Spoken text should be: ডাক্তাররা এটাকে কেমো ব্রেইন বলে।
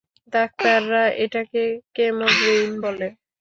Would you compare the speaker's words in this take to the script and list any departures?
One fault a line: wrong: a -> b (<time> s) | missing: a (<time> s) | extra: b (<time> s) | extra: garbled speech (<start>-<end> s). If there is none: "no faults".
no faults